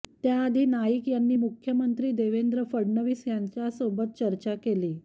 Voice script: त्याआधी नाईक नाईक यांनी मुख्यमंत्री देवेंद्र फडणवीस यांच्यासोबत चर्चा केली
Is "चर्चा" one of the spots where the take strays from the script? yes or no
no